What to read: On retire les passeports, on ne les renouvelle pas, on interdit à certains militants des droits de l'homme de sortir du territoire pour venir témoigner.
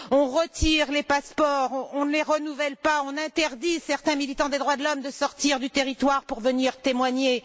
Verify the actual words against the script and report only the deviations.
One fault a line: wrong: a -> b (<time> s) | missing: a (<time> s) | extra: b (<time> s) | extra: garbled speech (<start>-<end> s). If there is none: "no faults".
no faults